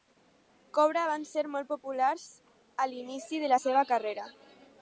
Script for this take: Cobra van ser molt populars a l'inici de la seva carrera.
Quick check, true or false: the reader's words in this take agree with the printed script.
true